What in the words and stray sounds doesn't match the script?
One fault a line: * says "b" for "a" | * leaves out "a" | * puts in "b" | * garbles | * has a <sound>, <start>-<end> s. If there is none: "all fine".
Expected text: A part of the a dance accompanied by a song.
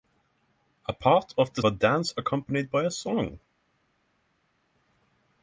all fine